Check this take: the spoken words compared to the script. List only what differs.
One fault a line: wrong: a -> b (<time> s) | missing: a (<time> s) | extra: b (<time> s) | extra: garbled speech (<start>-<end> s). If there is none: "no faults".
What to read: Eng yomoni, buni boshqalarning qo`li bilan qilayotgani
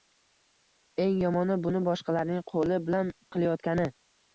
no faults